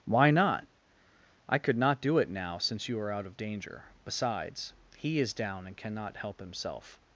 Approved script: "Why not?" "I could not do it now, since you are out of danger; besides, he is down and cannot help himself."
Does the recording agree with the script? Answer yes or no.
yes